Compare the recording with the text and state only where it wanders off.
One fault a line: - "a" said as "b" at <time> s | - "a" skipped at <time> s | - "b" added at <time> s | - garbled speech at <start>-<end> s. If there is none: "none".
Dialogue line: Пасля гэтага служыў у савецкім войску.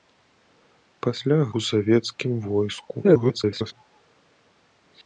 - "гэтага служыў" skipped at 1.4 s
- garbled speech at 3.0-3.7 s